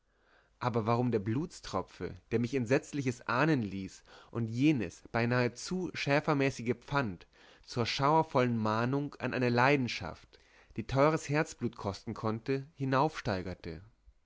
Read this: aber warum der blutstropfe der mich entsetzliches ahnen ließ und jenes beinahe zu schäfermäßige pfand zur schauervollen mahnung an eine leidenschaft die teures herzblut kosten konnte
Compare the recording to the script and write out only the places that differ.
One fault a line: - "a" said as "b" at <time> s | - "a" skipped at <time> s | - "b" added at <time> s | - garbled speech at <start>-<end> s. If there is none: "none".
none